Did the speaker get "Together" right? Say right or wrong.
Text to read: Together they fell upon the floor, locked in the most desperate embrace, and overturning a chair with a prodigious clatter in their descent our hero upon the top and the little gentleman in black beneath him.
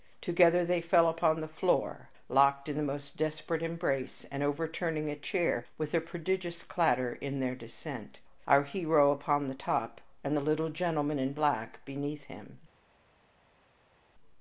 right